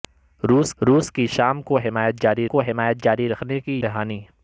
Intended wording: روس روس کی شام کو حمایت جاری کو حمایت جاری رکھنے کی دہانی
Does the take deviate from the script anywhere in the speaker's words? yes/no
no